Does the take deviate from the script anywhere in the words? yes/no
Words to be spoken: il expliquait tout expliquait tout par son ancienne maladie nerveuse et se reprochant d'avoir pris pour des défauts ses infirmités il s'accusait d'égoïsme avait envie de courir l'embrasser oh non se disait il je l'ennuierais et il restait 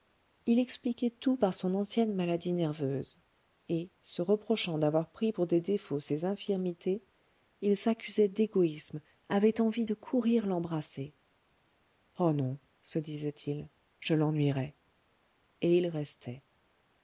yes